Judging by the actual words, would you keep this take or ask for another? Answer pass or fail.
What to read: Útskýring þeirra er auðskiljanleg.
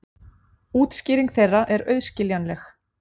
pass